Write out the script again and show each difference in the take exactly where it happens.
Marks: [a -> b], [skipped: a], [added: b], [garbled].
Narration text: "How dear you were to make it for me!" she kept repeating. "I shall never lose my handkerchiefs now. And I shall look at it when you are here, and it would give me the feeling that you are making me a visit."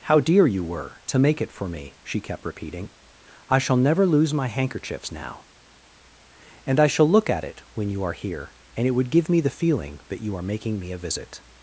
"How dear you were to make it for me!" she kept repeating. "I shall never lose my handkerchiefs now. And I shall look at it when you are here, and it would give me the feeling that you are making me a visit."